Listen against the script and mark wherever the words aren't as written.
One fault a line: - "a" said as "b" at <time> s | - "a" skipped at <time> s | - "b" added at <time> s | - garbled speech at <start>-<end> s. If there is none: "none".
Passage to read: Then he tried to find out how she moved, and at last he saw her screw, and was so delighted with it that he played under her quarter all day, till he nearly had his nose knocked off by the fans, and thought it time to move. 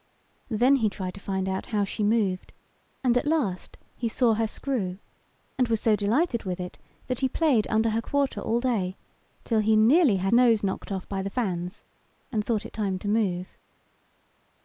- "his" skipped at 10.3 s